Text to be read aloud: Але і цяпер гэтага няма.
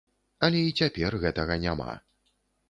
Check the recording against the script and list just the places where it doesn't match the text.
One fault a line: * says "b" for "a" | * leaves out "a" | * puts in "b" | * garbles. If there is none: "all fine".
all fine